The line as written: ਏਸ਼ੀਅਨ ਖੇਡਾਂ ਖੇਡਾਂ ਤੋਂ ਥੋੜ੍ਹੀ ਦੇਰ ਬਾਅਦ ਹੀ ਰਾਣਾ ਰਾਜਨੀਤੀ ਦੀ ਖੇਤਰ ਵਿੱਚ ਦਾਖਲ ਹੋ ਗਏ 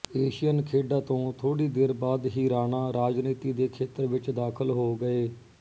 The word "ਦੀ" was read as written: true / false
false